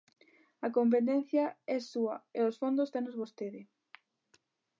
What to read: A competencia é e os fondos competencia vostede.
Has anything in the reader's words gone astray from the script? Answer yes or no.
yes